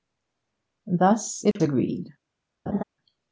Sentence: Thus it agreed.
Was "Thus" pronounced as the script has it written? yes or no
yes